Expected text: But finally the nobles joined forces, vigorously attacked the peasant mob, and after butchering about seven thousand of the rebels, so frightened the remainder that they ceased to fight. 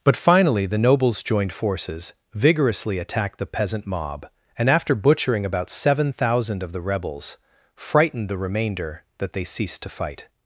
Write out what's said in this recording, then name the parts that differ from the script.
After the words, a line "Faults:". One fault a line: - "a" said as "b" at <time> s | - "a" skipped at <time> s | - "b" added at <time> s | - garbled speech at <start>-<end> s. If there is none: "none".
But finally the nobles joined forces, vigorously attacked the peasant mob, and after butchering about seven thousand of the rebels, frightened the remainder that they ceased to fight.
Faults:
- "so" skipped at 7.4 s